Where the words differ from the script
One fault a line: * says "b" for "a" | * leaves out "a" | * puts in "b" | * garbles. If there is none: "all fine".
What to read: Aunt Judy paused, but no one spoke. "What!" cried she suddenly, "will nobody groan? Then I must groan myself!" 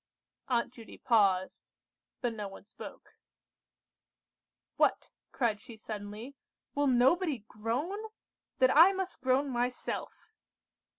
all fine